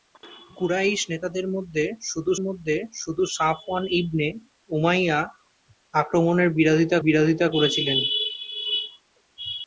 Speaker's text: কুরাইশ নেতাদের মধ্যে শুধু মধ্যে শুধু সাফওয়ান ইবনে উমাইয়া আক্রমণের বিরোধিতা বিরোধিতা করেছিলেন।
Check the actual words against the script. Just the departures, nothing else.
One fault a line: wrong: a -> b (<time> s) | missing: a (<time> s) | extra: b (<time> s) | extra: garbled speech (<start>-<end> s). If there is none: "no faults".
no faults